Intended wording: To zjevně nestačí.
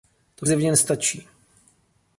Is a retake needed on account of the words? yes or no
no